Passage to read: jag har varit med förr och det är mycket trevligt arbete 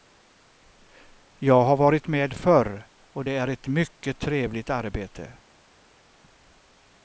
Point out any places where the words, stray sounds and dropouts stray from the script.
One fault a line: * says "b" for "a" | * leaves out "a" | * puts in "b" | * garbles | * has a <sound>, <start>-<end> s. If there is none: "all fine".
* puts in "ett"